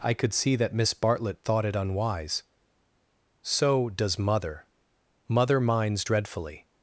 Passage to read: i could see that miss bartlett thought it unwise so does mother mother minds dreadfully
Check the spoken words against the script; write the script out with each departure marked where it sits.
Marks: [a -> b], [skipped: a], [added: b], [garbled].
i could see that miss bartlett thought it unwise so does mother mother minds dreadfully